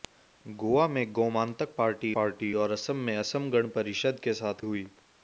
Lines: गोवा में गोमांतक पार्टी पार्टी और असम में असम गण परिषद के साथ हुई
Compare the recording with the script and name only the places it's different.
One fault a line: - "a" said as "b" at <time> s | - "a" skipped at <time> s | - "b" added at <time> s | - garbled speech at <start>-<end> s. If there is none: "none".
none